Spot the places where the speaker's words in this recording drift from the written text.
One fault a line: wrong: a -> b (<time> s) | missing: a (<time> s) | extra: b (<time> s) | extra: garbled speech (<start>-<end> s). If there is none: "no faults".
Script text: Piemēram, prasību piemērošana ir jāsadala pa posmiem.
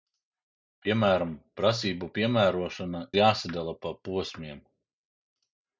missing: ir (3.0 s)